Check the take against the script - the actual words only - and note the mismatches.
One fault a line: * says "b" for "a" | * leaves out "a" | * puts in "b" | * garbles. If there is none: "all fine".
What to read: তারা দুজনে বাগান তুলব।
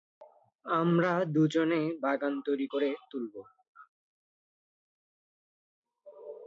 * says "আমরা" for "তারা"
* puts in "তৈরি করে"